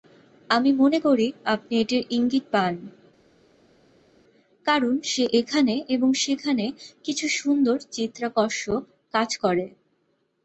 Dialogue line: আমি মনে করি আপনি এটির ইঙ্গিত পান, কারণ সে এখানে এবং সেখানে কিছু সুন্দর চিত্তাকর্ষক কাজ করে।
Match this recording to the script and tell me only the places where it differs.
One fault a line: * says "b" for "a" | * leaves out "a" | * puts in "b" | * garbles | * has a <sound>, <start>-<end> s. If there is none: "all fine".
all fine